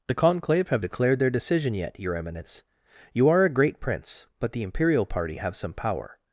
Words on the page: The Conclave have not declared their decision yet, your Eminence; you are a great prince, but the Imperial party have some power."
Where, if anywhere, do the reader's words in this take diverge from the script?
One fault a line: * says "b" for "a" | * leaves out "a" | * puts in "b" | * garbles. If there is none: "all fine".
* leaves out "not"